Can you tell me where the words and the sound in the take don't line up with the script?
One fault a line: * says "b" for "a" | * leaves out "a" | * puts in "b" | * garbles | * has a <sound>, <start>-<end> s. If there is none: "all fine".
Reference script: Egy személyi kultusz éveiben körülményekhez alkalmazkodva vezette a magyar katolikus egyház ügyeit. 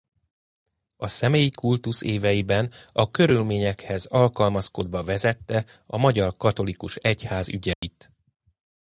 * says "A" for "Egy"
* puts in "a"
* has a dropout, 7.7-7.8 s